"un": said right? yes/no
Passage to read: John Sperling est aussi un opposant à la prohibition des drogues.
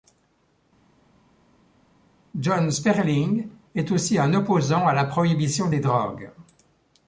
yes